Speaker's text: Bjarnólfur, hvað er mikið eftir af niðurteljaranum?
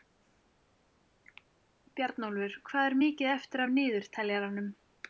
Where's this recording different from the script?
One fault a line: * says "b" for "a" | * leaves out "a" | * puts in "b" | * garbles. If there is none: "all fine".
all fine